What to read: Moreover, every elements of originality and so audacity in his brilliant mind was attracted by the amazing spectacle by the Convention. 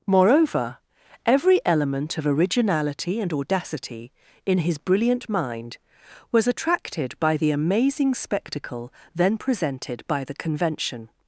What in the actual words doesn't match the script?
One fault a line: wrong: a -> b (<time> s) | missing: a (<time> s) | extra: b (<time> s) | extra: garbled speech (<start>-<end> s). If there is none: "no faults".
wrong: elements -> element (1.6 s)
missing: so (3.3 s)
extra: then presented (9.1 s)